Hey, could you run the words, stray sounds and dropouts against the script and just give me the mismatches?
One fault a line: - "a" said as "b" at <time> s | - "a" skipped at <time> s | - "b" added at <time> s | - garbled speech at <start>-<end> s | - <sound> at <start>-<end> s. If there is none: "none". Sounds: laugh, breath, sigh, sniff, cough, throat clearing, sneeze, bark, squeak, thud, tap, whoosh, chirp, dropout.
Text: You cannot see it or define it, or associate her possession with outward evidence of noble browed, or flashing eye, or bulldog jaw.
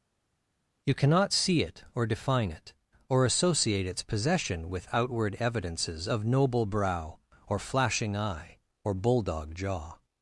- "her" said as "its" at 3.9 s
- "evidence" said as "evidences" at 5.4 s
- "browed" said as "brow" at 6.7 s